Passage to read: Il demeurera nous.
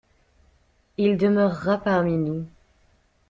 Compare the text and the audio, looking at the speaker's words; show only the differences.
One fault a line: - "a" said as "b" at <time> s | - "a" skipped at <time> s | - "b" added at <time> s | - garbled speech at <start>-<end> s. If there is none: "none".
- "parmi" added at 1.8 s